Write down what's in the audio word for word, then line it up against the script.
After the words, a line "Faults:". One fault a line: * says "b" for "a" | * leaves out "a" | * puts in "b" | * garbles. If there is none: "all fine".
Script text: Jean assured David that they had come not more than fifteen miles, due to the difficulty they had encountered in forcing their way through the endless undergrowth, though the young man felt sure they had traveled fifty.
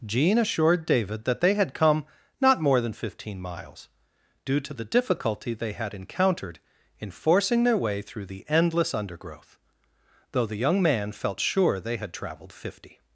Jean assured David that they had come not more than fifteen miles, due to the difficulty they had encountered in forcing their way through the endless undergrowth, though the young man felt sure they had traveled fifty.
Faults:
all fine